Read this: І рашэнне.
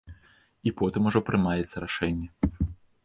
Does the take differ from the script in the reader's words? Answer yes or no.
yes